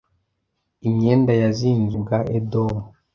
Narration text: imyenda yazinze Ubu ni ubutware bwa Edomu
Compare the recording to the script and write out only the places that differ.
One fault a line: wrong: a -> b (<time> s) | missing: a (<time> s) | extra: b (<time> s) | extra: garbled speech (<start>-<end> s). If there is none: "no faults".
missing: Ubu ni ubutware (1.9 s)